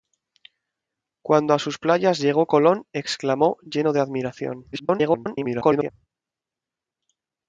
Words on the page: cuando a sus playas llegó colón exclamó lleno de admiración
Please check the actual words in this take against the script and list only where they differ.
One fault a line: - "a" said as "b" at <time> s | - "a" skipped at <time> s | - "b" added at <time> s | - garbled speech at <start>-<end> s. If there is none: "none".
- garbled speech at 4.7-5.9 s